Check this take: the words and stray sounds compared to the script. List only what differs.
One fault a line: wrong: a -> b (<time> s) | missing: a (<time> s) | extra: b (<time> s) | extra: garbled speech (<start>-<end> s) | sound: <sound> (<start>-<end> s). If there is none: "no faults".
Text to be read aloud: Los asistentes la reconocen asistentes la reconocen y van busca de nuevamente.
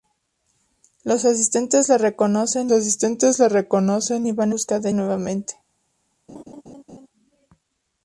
sound: laugh (6.3-7.1 s)